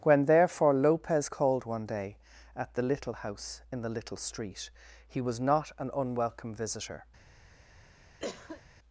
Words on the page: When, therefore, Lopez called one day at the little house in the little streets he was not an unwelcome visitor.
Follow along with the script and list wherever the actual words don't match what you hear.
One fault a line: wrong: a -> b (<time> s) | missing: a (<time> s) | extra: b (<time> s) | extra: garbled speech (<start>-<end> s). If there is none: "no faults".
wrong: streets -> street (4.2 s)